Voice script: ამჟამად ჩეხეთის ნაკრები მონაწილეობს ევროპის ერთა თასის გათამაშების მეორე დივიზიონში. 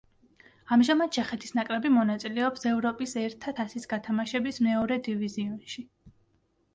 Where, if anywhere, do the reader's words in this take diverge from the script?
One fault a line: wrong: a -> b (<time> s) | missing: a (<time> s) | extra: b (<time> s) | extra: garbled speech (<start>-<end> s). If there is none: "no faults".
no faults